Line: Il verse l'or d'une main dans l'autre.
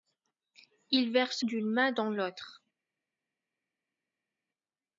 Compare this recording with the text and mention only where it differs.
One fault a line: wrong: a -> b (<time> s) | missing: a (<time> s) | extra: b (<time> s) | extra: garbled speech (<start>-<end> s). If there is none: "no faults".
missing: l'or (1.4 s)